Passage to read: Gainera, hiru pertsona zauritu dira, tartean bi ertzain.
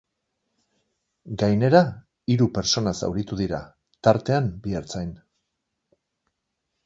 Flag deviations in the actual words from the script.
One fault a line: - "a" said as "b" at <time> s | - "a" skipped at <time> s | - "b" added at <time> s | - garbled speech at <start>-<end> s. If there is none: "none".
none